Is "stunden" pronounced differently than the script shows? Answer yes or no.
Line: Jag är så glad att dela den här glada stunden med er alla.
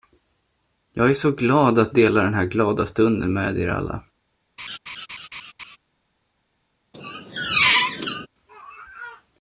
no